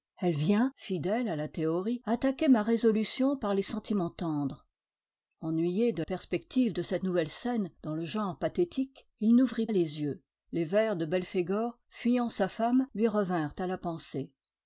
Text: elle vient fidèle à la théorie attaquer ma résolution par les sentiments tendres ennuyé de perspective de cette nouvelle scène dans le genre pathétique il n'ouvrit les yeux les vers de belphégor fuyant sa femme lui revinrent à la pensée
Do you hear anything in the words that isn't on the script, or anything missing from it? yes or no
no